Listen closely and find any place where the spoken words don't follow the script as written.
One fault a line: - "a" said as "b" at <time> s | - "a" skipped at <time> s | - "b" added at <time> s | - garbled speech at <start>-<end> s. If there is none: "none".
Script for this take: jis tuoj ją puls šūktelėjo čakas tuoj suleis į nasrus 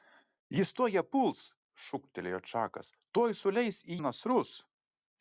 none